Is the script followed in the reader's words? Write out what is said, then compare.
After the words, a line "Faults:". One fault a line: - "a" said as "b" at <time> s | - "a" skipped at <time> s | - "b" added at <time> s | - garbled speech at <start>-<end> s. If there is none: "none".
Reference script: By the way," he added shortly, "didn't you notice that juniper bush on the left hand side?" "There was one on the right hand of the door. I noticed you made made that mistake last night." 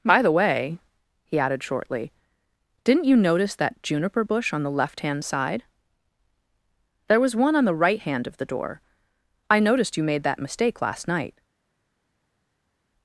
By the way," he added shortly, "didn't you notice that juniper bush on the left hand side?" "There was one on the right hand of the door. I noticed you made that mistake last night."
Faults:
- "made" skipped at 10.2 s